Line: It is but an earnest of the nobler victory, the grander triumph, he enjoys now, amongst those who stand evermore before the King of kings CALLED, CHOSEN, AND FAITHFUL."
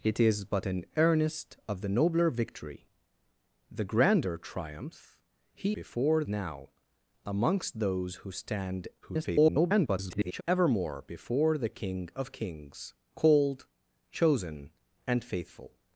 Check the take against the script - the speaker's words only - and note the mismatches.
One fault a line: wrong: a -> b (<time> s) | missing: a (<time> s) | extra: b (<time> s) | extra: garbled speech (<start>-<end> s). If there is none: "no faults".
wrong: enjoys -> before (5.7 s)
extra: garbled speech (9.0-10.4 s)